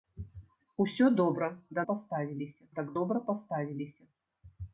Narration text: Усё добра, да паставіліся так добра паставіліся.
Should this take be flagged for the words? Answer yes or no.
no